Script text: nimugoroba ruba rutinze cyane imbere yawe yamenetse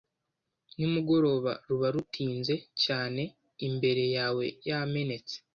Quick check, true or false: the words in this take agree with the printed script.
true